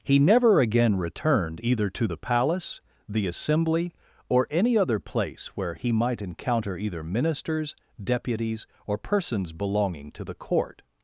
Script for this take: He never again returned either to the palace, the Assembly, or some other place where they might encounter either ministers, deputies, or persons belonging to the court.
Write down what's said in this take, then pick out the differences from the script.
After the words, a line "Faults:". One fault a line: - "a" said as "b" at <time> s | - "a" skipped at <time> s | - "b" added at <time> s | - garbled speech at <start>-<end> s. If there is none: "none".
He never again returned either to the palace, the Assembly, or any other place where he might encounter either ministers, deputies, or persons belonging to the court.
Faults:
- "some" said as "any" at 4.5 s
- "they" said as "he" at 5.7 s